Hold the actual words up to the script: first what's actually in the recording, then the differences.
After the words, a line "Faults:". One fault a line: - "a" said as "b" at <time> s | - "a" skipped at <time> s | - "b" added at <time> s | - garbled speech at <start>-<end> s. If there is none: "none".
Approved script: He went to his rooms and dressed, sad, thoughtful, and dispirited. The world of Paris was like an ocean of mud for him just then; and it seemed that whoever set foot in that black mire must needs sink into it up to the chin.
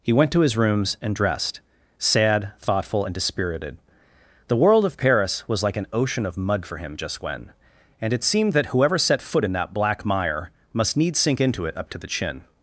He went to his rooms and dressed, sad, thoughtful, and dispirited. The world of Paris was like an ocean of mud for him just when; and it seemed that whoever set foot in that black mire must needs sink into it up to the chin.
Faults:
- "then" said as "when" at 7.2 s